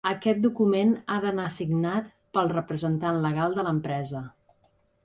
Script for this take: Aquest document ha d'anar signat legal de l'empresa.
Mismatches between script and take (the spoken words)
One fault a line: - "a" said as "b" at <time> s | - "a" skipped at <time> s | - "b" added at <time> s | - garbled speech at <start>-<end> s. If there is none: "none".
- "pel representant" added at 2.4 s